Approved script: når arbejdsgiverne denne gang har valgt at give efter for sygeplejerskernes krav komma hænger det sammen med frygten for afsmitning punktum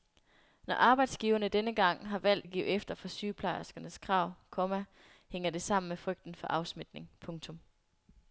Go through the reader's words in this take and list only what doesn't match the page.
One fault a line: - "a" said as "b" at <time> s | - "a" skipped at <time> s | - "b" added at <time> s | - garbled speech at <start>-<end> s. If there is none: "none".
none